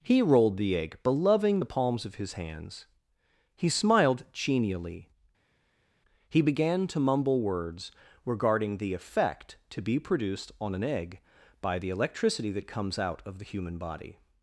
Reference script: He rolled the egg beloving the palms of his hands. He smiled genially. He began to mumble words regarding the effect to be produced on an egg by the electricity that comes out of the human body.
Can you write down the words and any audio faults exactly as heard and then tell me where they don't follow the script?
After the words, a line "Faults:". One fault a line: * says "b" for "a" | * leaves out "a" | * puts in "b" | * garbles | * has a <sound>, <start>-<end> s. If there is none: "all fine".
He rolled the egg beloving the palms of his hands. He smiled genially. He began to mumble words regarding the effect to be produced on an egg by the electricity that comes out of the human body.
Faults:
all fine